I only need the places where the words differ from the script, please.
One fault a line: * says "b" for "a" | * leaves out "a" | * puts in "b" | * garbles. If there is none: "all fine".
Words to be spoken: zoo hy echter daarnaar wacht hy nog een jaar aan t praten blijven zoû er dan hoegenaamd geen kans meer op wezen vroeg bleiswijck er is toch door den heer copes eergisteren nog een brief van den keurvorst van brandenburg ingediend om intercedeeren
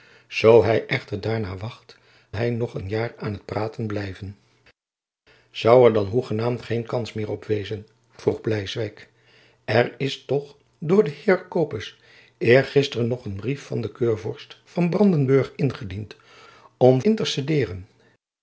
all fine